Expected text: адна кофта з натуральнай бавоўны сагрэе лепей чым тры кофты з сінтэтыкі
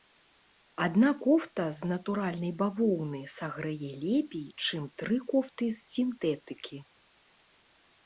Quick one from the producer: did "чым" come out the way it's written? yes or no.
yes